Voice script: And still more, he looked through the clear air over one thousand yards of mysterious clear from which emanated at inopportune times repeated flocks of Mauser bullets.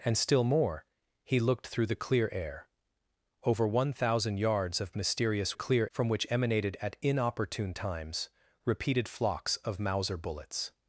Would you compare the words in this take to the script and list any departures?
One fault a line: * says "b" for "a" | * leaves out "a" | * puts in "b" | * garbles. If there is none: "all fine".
all fine